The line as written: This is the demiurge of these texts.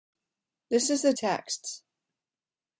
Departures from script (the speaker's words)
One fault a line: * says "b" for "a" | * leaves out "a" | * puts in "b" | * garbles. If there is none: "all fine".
* leaves out "demiurge of these"